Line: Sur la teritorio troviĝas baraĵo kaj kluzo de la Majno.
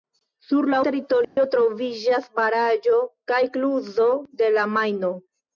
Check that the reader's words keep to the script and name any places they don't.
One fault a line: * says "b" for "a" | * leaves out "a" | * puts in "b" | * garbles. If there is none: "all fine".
all fine